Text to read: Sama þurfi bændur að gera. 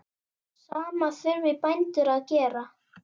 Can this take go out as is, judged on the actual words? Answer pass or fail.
pass